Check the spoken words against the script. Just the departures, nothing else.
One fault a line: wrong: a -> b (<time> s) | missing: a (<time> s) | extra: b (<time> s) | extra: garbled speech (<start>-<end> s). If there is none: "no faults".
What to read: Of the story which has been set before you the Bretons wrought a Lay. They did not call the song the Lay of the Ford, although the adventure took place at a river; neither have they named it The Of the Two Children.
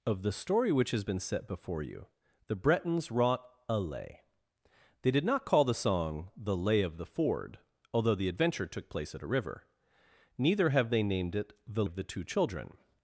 no faults